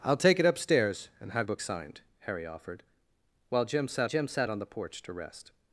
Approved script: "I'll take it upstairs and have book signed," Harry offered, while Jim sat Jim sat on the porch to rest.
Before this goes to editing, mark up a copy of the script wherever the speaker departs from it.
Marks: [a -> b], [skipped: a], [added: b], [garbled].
"I'll take it upstairs and have book signed," Harry offered, while Jim sat Jim sat on the porch to rest.